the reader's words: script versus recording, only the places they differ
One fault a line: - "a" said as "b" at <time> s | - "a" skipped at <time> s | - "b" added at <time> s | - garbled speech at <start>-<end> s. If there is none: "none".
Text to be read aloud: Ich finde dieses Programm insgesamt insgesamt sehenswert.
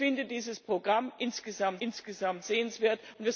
none